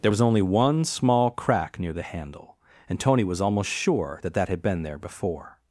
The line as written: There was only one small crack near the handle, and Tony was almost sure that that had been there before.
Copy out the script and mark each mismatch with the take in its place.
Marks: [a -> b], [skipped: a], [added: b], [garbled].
There was only one small crack near the handle, and Tony was almost sure that that had been there before.